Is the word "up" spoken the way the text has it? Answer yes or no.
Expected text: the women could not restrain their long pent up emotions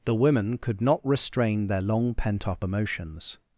yes